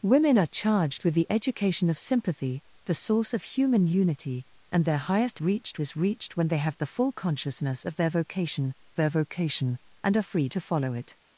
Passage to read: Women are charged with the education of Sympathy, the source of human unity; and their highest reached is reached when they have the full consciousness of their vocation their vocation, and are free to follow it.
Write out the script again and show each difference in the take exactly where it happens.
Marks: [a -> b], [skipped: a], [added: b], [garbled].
Women are charged with the education of Sympathy, the source of human unity; and their highest reached is reached when they have the full consciousness of their vocation their vocation, and are free to follow it.